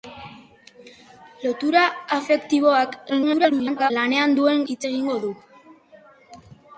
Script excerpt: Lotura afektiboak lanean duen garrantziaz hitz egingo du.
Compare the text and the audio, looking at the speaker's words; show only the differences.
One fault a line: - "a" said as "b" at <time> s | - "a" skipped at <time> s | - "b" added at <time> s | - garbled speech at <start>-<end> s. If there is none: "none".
- garbled speech at 3.1-3.9 s
- "garrantziaz" skipped at 4.6 s